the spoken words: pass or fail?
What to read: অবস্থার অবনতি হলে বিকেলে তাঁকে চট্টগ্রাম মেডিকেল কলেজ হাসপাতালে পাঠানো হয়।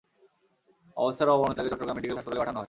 fail